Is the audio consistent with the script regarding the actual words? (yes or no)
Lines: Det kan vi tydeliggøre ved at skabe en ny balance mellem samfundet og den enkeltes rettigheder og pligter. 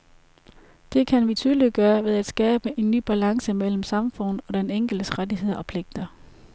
yes